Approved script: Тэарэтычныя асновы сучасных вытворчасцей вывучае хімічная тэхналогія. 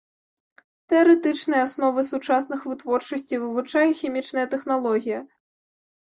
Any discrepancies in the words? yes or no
no